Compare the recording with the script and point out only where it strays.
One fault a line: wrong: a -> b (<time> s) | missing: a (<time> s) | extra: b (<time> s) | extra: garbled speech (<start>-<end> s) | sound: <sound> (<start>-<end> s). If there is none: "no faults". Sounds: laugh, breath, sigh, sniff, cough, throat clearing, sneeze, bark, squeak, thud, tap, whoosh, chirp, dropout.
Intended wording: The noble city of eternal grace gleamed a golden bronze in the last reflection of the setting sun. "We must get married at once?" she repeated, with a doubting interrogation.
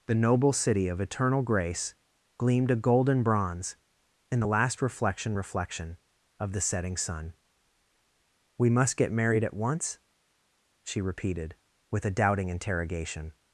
extra: reflection (5.3 s)